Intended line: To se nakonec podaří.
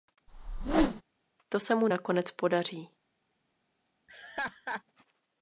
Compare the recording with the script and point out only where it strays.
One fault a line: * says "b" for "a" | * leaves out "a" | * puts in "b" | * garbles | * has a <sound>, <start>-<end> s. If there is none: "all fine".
* has a whoosh, 0.3-1.0 s
* puts in "mu"
* has a laugh, 4.1-4.8 s